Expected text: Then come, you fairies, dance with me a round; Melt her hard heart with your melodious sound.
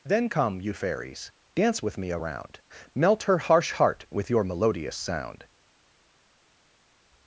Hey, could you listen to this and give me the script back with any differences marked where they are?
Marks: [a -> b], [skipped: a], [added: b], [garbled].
Then come, you fairies, dance with me a round; Melt her [hard -> harsh] heart with your melodious sound.